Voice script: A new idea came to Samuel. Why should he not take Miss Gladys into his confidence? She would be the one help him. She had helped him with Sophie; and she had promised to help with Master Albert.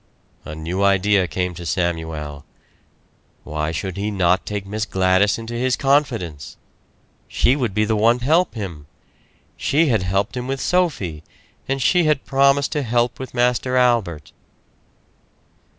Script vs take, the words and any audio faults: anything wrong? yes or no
no